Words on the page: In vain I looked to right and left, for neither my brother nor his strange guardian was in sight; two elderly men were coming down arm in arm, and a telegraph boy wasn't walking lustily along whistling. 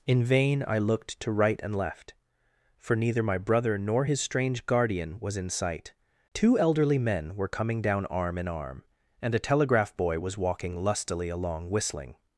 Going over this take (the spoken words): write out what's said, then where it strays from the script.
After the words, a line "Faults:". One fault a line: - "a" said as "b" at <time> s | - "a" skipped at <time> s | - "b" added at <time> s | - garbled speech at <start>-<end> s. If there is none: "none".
In vain I looked to right and left, for neither my brother nor his strange guardian was in sight; two elderly men were coming down arm in arm, and a telegraph boy was walking lustily along whistling.
Faults:
- "wasn't" said as "was" at 10.2 s